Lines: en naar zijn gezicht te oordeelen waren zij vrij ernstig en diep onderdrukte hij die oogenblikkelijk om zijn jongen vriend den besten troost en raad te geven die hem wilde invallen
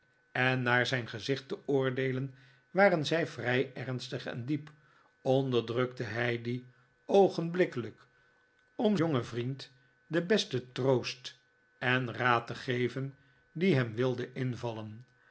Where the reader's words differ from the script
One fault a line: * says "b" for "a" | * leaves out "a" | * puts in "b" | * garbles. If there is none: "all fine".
* leaves out "zijn"